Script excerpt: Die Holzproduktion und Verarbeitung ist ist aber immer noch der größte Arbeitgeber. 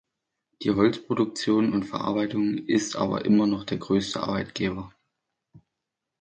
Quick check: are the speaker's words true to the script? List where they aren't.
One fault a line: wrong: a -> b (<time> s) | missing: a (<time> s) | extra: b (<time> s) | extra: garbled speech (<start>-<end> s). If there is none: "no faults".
missing: ist (2.9 s)